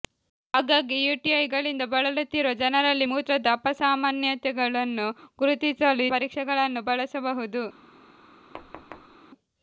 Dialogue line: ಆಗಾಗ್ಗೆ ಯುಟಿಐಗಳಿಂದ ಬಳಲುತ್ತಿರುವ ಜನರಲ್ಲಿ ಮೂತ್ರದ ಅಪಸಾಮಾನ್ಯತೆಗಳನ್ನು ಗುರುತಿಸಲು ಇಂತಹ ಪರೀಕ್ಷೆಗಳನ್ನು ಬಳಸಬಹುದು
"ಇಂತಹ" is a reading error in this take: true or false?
true